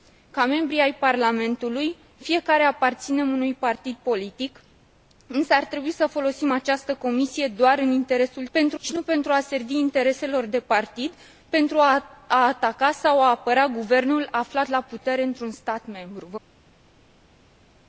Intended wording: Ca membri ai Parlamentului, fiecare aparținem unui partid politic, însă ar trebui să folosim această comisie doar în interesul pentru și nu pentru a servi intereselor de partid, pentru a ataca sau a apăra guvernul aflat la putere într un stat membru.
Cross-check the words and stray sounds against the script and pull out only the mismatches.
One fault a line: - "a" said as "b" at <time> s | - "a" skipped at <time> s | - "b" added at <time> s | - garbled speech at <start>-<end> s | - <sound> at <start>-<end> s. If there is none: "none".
none